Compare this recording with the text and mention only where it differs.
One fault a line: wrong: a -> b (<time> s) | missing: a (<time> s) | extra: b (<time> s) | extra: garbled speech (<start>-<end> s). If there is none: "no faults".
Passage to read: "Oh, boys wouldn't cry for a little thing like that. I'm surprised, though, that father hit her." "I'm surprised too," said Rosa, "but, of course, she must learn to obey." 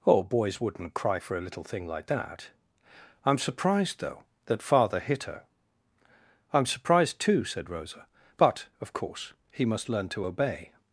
wrong: she -> he (9.5 s)